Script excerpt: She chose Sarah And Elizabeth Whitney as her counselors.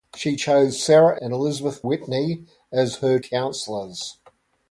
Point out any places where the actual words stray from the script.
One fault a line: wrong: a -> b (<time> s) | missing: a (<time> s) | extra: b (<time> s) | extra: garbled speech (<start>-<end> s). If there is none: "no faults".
no faults